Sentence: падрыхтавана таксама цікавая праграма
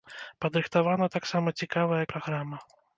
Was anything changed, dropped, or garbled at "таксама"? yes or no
no